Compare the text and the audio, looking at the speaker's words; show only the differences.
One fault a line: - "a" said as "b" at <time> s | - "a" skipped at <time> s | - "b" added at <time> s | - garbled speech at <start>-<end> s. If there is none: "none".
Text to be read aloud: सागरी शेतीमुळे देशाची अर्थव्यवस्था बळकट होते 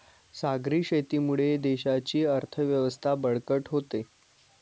none